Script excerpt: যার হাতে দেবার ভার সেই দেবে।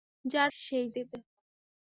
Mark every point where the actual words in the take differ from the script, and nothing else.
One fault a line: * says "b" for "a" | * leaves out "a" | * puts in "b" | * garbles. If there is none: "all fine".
* leaves out "হাতে দেবার ভার"